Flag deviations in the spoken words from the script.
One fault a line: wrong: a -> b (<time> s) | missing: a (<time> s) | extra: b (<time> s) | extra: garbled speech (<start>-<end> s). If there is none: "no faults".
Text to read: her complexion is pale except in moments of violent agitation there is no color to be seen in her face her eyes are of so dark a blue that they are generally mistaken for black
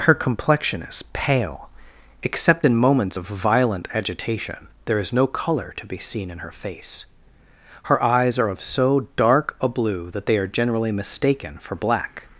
no faults